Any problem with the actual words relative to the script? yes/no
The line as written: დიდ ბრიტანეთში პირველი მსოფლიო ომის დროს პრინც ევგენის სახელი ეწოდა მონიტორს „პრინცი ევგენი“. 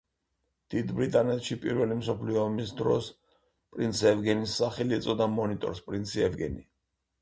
no